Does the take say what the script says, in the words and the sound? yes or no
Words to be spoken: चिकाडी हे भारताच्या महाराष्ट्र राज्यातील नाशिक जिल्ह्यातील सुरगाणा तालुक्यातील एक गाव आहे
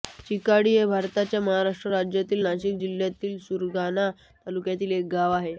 yes